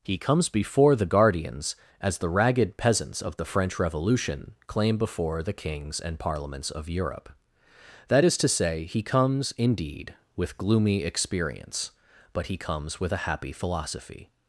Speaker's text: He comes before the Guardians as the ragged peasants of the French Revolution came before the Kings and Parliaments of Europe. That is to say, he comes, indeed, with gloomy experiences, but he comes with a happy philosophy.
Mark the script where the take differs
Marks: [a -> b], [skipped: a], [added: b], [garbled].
He comes before the Guardians as the ragged peasants of the French Revolution [came -> claim] before the Kings and Parliaments of Europe. That is to say, he comes, indeed, with gloomy [experiences, -> experience] but he comes with a happy philosophy.